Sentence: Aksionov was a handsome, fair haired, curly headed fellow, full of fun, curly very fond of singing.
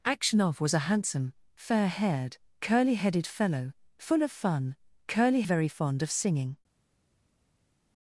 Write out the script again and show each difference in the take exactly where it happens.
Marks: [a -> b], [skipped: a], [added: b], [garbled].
Aksionov was a handsome, fair haired, curly headed fellow, full of fun, curly very fond of singing.